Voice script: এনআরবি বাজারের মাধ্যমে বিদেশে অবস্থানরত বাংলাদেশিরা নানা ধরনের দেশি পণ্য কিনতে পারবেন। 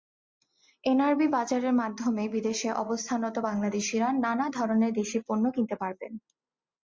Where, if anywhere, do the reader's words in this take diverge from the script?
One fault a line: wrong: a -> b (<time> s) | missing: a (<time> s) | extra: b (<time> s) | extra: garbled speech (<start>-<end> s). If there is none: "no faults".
no faults